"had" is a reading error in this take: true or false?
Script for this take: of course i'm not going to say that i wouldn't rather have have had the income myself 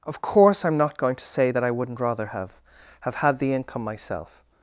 false